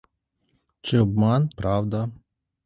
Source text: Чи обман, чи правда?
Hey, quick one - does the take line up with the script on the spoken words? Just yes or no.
no